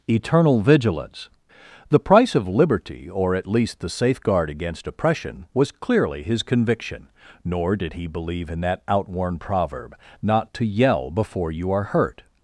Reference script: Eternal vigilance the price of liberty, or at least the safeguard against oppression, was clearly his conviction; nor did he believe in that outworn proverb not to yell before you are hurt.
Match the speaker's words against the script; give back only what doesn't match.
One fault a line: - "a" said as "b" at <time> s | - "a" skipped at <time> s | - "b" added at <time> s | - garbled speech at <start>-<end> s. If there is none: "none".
none